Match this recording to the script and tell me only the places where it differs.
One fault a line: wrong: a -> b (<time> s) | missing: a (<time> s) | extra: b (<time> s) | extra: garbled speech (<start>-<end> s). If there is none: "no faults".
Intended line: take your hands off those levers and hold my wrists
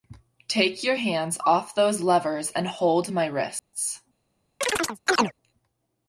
no faults